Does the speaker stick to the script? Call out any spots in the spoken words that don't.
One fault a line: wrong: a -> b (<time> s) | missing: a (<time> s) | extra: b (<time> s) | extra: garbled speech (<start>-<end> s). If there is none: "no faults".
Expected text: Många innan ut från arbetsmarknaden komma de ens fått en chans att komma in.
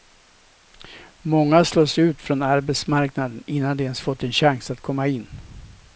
wrong: innan -> slås (1.6 s)
wrong: komma -> innan (3.5 s)